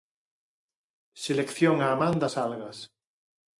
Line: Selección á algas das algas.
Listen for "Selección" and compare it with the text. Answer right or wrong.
right